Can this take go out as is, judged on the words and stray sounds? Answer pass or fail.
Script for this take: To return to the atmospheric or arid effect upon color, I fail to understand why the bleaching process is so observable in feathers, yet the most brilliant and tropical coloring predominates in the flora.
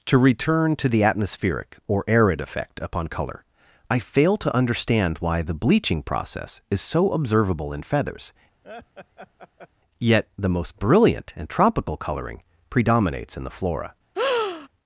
fail